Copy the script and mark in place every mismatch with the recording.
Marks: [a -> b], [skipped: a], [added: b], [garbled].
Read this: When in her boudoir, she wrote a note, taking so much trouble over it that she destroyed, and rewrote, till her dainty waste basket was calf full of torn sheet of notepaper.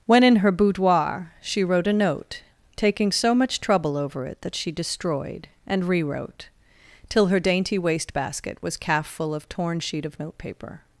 When in her boudoir, she wrote a note, taking so much trouble over it that she destroyed, and rewrote, till her dainty waste basket was calf full of torn sheet of notepaper.